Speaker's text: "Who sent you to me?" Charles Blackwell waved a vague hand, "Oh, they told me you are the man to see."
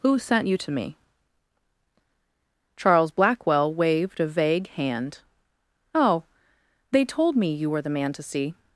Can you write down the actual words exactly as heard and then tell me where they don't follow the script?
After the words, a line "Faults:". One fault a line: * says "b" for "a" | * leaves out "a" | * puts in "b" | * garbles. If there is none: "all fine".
"Who sent you to me?" Charles Blackwell waved a vague hand, "Oh, they told me you were the man to see."
Faults:
* says "were" for "are"